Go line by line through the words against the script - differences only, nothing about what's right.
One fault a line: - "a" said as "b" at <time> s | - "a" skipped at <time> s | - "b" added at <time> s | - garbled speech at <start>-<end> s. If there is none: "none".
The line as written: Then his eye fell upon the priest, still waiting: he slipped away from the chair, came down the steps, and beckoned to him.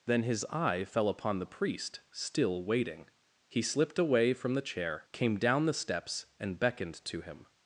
none